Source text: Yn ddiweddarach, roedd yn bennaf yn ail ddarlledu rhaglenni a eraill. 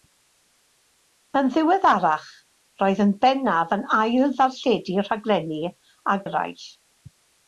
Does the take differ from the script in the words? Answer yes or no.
no